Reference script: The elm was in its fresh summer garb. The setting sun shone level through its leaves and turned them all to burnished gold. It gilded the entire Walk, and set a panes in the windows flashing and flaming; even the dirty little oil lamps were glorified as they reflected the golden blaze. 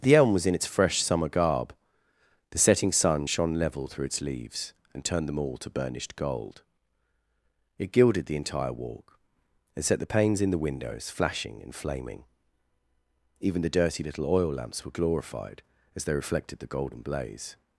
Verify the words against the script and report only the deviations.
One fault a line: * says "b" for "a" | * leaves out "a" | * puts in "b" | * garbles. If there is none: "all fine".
* says "the" for "a"